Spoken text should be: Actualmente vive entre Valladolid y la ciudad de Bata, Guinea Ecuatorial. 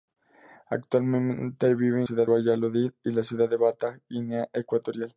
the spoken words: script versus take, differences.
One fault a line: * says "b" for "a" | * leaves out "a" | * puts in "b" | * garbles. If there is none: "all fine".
* says "ciudad" for "entre"